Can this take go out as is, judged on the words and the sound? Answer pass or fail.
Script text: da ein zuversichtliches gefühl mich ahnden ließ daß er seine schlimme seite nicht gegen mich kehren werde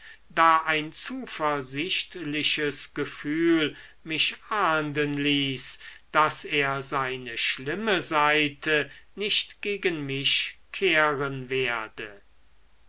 pass